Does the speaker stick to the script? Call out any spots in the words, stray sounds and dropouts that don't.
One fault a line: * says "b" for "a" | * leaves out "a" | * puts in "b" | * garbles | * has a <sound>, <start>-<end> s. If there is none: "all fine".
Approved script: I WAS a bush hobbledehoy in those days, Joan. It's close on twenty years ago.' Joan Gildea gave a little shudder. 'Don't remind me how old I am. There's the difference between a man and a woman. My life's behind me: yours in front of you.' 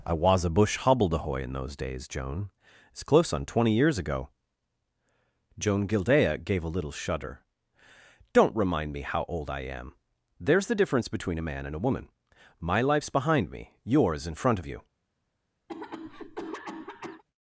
* has a cough, 15.7-17.2 s